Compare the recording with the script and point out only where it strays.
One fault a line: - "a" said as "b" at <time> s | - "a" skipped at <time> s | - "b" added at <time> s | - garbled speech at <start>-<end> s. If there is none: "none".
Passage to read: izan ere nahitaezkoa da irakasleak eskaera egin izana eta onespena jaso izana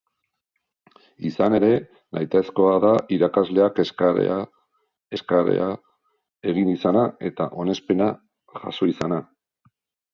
- "eskaera" added at 5.1 s